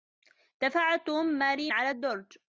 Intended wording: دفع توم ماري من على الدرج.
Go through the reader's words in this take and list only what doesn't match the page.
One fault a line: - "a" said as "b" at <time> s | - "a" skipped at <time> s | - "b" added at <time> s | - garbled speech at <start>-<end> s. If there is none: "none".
- "من" skipped at 1.7 s